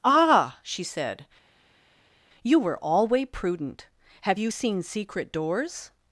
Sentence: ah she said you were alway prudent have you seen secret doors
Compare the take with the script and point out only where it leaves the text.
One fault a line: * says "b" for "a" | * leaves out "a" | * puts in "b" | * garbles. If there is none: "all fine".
all fine